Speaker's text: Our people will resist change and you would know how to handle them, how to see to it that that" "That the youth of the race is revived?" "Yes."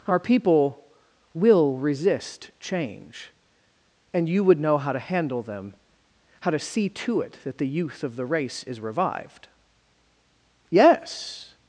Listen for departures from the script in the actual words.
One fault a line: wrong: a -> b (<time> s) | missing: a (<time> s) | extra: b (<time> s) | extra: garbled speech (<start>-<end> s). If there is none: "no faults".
missing: that That (7.6 s)